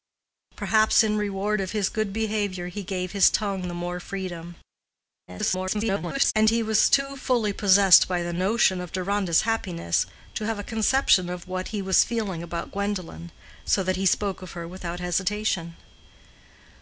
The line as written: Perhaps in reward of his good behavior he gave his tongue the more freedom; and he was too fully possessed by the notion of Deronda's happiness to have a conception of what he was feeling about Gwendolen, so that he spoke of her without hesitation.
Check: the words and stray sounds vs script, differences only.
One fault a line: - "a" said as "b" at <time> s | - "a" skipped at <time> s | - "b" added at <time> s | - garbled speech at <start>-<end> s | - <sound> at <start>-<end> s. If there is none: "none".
- garbled speech at 5.3-6.3 s